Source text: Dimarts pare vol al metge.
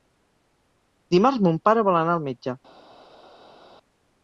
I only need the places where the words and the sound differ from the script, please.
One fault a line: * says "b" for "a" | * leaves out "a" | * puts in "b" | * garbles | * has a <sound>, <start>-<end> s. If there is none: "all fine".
* puts in "mon"
* puts in "anar"